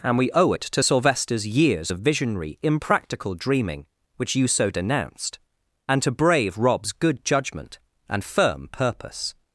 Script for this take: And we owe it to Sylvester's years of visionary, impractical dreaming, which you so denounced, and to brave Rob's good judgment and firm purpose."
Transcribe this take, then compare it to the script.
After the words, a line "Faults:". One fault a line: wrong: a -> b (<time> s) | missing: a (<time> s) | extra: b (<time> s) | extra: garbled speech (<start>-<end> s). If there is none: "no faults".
And we owe it to Sylvester's years of visionary, impractical dreaming, which you so denounced, and to brave Rob's good judgment and firm purpose."
Faults:
no faults